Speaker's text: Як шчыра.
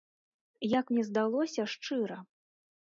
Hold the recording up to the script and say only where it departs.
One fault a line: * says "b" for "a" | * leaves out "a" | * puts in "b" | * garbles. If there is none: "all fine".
* puts in "мне здалося"